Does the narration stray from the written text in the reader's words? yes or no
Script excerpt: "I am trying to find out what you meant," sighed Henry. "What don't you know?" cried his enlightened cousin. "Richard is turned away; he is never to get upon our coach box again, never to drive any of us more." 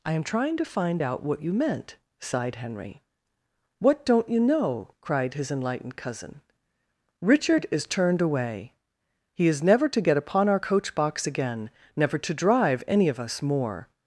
no